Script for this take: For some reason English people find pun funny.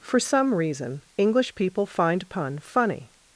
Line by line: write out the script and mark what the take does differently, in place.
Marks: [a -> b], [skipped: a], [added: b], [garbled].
For some reason English people find pun funny.